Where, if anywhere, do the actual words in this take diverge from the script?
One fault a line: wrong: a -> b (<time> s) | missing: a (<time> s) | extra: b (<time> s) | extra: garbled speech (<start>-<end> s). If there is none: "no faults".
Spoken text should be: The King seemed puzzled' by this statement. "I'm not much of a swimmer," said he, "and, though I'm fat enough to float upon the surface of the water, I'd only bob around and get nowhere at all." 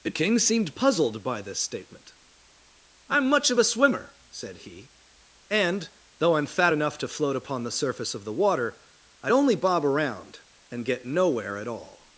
missing: not (3.3 s)